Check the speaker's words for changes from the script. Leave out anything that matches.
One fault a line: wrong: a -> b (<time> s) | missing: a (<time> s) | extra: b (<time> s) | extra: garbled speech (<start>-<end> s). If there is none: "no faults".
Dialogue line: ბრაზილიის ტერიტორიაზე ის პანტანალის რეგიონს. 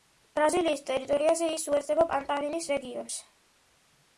extra: უერთდება (1.7 s)